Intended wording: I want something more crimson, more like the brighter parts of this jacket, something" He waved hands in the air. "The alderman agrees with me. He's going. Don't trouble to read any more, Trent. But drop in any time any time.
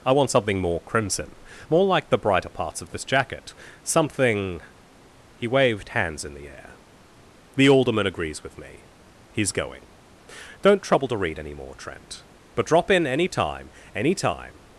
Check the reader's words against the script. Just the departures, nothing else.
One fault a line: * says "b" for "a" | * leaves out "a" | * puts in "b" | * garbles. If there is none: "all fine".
all fine